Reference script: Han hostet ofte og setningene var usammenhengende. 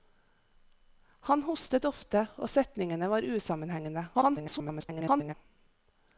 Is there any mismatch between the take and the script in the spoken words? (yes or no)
yes